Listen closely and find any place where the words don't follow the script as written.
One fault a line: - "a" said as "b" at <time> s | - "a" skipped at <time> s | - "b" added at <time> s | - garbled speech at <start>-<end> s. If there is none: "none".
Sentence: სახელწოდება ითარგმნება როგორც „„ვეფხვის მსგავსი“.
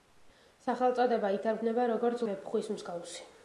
none